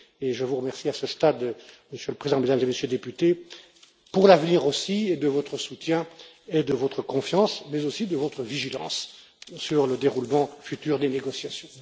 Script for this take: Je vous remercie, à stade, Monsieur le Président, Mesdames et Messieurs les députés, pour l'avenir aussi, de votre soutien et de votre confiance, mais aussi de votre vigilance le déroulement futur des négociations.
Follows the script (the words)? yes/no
no